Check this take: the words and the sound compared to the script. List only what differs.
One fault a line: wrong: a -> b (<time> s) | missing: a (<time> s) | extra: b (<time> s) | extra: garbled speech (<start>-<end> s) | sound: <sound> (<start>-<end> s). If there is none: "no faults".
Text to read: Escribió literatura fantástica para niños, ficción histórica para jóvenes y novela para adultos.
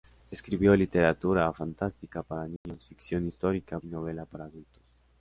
sound: dropout (2.6-2.7 s)
missing: para jóvenes (3.8 s)